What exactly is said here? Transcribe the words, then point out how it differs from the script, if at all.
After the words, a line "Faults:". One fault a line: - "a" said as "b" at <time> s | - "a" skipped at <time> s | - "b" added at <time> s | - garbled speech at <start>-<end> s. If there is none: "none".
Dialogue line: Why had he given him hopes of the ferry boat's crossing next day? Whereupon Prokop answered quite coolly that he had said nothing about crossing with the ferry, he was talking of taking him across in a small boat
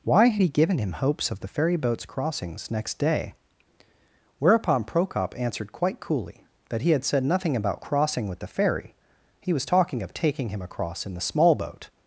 Why had he given him hopes of the ferry boat's crossings next day? Whereupon Prokop answered quite coolly that he had said nothing about crossing with the ferry, he was talking of taking him across in the small boat
Faults:
- "crossing" said as "crossings" at 2.1 s
- "a" said as "the" at 11.1 s